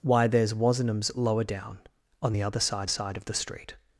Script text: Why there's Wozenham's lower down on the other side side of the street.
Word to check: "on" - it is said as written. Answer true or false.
true